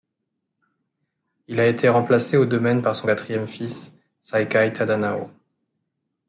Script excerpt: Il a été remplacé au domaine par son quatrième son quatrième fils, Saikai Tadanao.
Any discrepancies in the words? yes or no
yes